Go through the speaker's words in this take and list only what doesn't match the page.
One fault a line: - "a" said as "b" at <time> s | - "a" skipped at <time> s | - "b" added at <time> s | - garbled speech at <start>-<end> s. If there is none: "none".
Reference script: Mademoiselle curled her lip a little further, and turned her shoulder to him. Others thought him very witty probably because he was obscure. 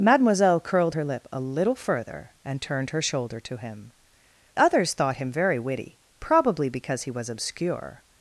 none